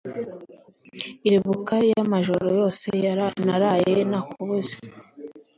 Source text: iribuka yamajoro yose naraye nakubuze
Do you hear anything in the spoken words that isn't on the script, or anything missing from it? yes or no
no